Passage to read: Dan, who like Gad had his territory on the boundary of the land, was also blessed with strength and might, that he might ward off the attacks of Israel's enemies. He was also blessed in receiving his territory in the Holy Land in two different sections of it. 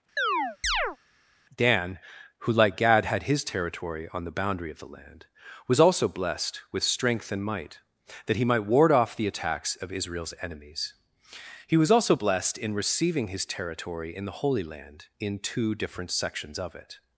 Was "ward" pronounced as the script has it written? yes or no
yes